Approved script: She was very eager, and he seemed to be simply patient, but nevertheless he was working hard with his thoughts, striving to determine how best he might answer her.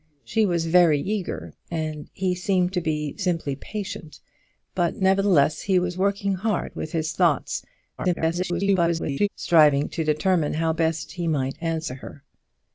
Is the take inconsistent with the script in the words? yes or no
yes